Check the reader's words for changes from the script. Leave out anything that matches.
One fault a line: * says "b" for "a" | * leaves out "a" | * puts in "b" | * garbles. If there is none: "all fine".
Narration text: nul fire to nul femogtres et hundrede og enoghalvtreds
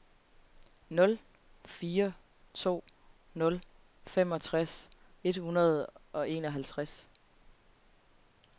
all fine